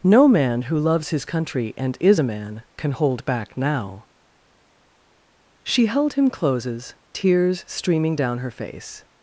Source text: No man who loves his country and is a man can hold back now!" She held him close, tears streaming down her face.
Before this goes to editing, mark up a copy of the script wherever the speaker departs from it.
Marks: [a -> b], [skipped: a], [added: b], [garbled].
No man who loves his country and is a man can hold back now!" She held him [close, -> closes] tears streaming down her face.